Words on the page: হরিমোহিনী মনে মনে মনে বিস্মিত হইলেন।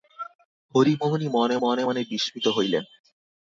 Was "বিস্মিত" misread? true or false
false